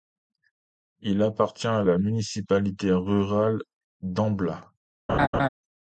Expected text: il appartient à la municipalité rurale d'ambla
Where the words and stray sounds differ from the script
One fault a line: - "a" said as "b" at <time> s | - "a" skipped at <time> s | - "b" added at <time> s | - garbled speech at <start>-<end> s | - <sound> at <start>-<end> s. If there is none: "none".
- laugh at 5.1-5.5 s